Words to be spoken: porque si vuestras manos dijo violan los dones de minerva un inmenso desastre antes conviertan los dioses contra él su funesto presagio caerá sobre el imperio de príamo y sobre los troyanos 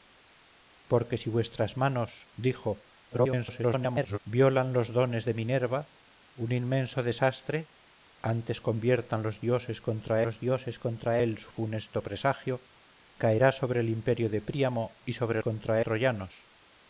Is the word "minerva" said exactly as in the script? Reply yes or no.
yes